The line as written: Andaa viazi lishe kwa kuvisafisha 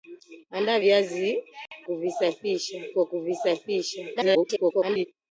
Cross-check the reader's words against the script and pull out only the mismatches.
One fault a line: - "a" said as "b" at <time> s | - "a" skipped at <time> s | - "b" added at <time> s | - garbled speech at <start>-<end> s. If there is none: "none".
- "lishe" said as "kuvisafisha" at 1.8 s
- garbled speech at 4.2-5.1 s